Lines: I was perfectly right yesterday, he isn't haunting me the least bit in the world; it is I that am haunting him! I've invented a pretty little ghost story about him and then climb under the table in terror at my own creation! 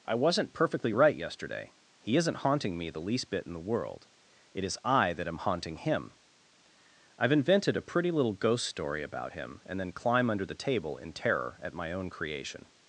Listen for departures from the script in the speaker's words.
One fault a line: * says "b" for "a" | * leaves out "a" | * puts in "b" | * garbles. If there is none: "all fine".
* says "wasn't" for "was"